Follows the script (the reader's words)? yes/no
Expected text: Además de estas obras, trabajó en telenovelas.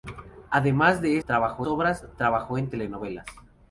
no